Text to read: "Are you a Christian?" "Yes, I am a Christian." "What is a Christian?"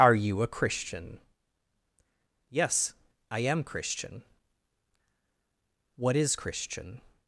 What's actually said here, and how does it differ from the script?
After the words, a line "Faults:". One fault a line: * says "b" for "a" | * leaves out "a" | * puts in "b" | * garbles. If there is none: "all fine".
"Are you a Christian?" "Yes, I am Christian." "What is Christian?"
Faults:
* leaves out "a"
* leaves out "a"